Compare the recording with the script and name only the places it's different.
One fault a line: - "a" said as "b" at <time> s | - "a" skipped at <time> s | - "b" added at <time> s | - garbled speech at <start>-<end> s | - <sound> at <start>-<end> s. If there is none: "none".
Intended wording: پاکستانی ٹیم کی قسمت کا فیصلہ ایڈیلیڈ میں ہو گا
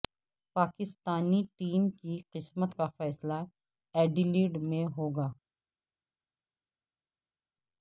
none